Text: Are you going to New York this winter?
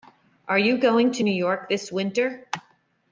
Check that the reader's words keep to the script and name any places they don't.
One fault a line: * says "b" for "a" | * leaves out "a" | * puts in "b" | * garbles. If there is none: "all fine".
all fine